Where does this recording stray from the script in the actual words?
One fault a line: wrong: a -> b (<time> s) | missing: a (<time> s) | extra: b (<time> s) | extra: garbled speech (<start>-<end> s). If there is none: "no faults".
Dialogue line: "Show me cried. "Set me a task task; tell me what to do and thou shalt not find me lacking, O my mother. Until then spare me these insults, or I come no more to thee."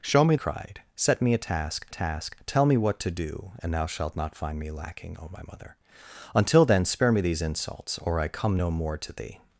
no faults